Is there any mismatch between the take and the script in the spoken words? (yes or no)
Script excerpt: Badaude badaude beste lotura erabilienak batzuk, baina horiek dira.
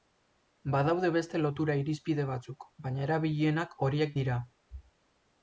yes